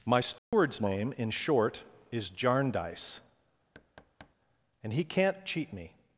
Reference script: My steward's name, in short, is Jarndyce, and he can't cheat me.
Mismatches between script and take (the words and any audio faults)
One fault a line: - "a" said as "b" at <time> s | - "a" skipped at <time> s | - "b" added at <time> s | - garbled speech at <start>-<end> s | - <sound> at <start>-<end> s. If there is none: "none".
- dropout at 0.4-0.5 s
- thud at 3.7-4.4 s